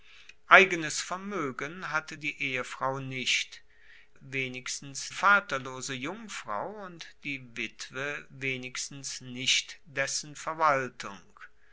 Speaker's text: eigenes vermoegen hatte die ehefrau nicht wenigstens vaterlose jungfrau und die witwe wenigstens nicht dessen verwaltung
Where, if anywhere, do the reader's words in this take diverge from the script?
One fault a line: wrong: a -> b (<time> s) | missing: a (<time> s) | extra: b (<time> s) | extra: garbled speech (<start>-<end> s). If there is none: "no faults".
no faults